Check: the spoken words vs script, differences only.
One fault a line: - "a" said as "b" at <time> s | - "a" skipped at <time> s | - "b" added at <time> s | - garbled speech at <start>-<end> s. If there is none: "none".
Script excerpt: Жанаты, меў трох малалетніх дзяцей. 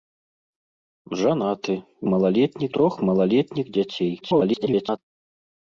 - "меў" said as "малалетніх" at 2.1 s
- garbled speech at 4.2-5.0 s